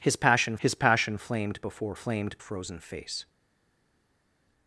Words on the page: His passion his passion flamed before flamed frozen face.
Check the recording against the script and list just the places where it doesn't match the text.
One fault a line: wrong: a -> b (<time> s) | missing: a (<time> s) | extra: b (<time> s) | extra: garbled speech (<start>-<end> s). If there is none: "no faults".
no faults